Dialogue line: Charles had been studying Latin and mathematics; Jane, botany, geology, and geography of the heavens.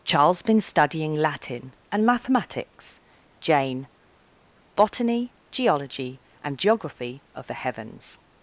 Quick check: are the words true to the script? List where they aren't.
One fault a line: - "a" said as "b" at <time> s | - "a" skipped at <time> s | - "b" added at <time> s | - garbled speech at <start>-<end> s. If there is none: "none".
- "had" skipped at 0.4 s